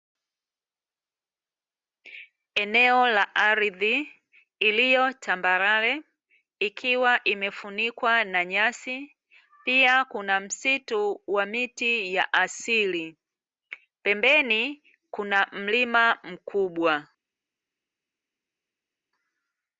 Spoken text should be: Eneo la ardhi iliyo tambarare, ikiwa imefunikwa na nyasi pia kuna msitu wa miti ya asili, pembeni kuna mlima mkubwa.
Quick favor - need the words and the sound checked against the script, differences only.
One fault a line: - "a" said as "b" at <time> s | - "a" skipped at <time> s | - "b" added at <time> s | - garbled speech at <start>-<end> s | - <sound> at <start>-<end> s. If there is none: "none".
none